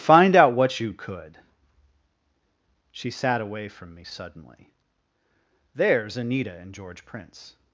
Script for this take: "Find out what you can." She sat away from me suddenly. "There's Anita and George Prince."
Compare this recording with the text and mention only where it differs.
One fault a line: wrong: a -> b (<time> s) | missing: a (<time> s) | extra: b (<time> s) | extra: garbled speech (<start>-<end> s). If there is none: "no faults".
wrong: can -> could (0.9 s)